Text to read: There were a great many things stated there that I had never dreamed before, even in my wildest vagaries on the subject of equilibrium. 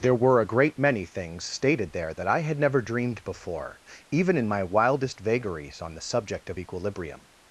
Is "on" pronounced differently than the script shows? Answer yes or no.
no